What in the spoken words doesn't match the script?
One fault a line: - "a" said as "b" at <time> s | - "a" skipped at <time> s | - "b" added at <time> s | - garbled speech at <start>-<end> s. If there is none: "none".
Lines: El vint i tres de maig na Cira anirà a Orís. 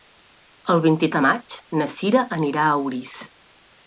- "tres" skipped at 1.1 s